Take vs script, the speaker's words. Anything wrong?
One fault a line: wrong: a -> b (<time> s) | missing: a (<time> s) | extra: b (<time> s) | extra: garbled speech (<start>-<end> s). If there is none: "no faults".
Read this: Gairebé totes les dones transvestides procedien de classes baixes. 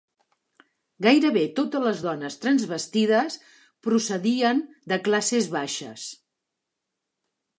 no faults